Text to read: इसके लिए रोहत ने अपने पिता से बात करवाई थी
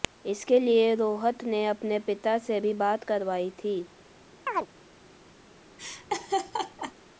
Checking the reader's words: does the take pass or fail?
fail